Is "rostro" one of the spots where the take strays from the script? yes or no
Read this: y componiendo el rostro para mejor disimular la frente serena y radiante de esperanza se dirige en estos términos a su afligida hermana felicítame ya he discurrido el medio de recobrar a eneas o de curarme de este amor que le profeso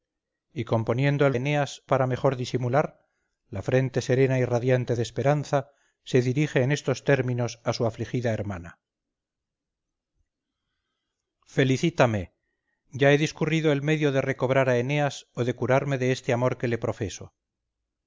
yes